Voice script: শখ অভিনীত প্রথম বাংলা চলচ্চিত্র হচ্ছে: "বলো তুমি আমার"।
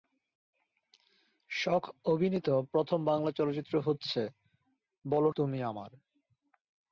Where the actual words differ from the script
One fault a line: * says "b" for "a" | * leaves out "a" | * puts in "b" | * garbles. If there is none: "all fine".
all fine